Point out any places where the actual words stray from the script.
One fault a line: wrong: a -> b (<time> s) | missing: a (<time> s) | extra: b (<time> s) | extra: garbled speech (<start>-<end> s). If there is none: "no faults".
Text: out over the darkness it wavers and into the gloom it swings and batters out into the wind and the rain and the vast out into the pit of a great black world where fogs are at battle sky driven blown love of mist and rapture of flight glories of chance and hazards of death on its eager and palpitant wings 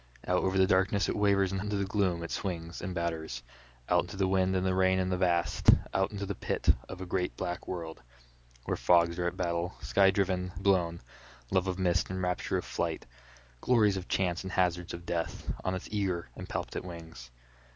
no faults